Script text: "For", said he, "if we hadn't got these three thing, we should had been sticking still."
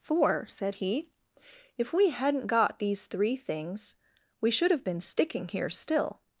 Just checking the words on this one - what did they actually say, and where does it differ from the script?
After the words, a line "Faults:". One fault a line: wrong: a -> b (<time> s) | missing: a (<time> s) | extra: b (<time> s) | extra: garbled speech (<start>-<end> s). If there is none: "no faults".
"For", said he, "if we hadn't got these three things, we should have been sticking here still."
Faults:
wrong: thing -> things (3.4 s)
wrong: had -> have (4.7 s)
extra: here (5.5 s)